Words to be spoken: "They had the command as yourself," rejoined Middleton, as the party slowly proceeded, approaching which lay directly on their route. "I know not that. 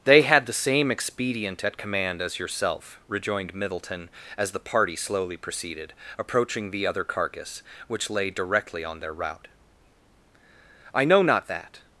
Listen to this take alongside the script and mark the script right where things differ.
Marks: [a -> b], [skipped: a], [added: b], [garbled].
"They had the [added: same expedient at] command as yourself," rejoined Middleton, as the party slowly proceeded, approaching [added: the other carcass] which lay directly on their route. "I know not that.